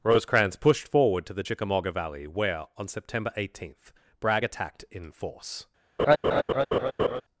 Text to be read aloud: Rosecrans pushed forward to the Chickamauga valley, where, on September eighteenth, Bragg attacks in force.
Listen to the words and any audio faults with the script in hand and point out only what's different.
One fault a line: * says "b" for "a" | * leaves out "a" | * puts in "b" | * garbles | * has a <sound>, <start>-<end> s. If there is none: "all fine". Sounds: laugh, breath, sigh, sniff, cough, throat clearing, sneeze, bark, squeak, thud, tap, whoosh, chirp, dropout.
* says "attacked" for "attacks"
* has a laugh, 6.0-7.2 s